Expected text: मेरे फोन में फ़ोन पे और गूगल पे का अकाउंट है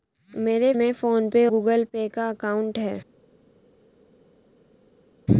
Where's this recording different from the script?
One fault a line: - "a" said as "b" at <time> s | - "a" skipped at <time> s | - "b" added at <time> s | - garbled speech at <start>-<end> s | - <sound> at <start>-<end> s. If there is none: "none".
- "फोन" skipped at 0.7 s
- "और" skipped at 1.5 s